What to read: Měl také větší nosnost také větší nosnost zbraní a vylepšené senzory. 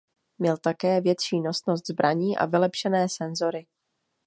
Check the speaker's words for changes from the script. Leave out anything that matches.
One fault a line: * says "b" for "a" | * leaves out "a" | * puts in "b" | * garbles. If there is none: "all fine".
* leaves out "také větší nosnost"